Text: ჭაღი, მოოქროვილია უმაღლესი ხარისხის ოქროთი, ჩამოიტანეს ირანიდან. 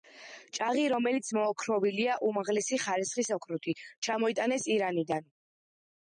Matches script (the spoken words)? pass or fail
fail